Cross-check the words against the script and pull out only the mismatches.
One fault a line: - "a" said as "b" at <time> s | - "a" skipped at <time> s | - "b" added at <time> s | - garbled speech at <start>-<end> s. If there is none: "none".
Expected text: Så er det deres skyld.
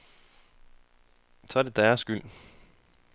none